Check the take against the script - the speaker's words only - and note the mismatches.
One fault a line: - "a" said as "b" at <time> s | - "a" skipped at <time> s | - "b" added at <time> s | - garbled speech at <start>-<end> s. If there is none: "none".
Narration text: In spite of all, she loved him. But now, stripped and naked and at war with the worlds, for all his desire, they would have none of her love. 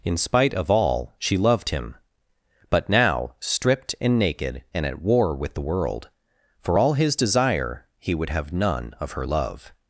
- "worlds" said as "world" at 5.6 s
- "they" said as "he" at 8.0 s